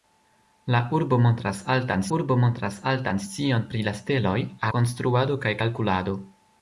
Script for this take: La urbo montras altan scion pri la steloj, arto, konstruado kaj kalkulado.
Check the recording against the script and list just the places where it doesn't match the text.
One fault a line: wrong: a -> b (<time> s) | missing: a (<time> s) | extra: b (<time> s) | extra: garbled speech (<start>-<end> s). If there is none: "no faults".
extra: urbo montras altan (2.2 s)
missing: arto (4.4 s)